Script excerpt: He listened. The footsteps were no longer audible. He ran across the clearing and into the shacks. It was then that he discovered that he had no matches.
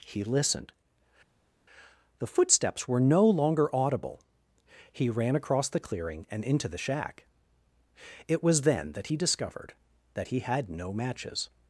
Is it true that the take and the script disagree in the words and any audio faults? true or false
true